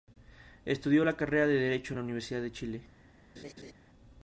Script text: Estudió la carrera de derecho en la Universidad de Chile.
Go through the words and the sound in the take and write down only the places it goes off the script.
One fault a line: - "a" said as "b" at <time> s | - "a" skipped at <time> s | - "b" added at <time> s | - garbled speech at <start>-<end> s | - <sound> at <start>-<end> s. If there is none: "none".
- laugh at 3.4-3.7 s